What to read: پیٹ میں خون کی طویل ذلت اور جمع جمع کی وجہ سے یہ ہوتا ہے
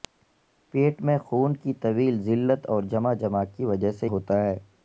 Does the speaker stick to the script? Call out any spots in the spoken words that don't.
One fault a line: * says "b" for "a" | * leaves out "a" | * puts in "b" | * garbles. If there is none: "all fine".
* leaves out "یہ"